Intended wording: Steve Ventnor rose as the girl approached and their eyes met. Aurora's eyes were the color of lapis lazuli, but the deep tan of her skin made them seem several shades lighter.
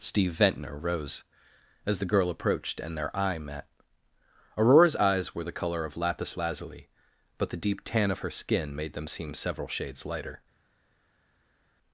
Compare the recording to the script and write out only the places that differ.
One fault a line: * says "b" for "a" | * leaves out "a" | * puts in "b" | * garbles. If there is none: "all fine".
* says "eye" for "eyes"